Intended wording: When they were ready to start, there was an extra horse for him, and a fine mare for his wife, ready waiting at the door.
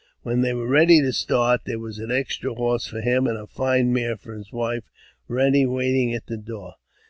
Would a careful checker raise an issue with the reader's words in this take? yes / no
no